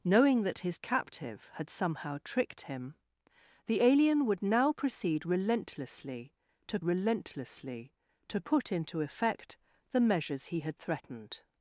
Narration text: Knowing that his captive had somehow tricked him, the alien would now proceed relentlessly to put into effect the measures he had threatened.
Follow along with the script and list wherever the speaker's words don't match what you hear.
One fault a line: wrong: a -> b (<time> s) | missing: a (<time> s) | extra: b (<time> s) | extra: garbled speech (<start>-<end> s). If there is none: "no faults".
extra: relentlessly to (6.8 s)